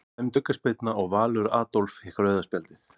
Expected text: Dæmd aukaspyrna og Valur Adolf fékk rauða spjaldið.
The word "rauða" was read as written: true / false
true